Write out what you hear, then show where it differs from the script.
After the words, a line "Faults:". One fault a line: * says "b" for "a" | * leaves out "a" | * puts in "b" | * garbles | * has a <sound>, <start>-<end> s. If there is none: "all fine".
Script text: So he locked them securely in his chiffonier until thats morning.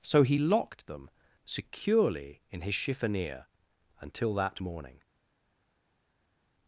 So he locked them securely in his chiffonier until that morning.
Faults:
* says "that" for "thats"